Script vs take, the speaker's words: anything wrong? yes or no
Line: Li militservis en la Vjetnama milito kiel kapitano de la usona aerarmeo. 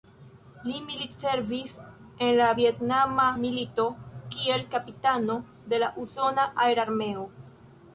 no